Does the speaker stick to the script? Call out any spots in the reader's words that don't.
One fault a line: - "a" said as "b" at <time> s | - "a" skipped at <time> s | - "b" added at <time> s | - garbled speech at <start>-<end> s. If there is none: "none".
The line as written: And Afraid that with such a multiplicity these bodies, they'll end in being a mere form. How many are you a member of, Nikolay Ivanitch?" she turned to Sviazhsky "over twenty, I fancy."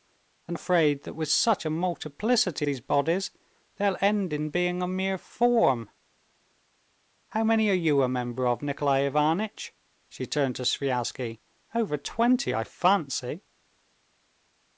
none